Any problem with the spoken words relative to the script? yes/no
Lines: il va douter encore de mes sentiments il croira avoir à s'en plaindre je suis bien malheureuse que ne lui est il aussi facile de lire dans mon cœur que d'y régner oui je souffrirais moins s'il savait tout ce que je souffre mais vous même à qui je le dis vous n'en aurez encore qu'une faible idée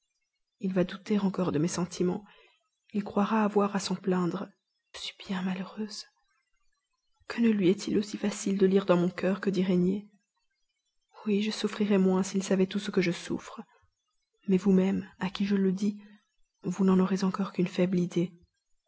yes